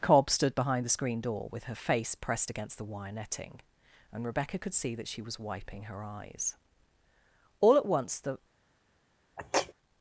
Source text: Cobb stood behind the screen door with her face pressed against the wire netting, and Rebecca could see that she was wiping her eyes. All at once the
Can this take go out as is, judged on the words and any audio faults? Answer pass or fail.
fail